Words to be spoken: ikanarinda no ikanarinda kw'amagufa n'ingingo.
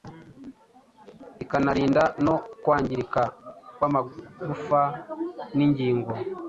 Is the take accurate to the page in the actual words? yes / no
no